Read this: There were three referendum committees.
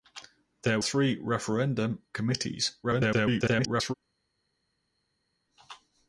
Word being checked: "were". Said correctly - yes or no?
no